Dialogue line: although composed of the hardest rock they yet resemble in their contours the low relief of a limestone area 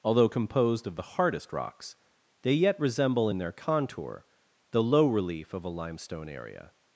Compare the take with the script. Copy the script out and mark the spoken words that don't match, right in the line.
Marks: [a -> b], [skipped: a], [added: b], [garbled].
although composed of the hardest [rock -> rocks] they yet resemble in their [contours -> contour] the low relief of a limestone area